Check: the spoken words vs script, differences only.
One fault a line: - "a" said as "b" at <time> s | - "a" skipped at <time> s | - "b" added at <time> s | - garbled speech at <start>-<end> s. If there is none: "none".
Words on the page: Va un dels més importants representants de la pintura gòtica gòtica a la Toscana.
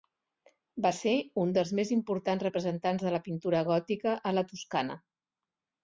- "ser" added at 1.0 s
- "gòtica" skipped at 4.2 s